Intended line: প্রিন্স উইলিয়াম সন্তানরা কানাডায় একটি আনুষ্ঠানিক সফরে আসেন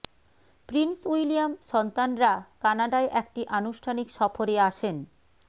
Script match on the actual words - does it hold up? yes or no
yes